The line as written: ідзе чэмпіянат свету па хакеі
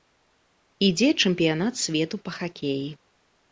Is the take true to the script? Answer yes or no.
yes